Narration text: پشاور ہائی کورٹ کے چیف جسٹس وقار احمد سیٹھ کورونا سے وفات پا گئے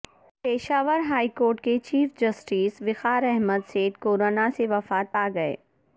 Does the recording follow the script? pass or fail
pass